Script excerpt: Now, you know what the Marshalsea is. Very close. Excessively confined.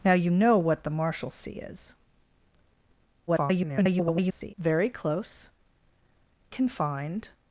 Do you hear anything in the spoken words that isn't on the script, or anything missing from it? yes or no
yes